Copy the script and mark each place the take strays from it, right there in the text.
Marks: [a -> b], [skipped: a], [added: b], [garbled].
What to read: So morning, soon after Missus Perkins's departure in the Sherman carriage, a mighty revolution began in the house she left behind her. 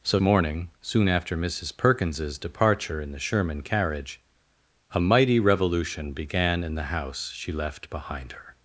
So morning, soon after Missus Perkins's departure in the Sherman carriage, a mighty revolution began in the house she left behind her.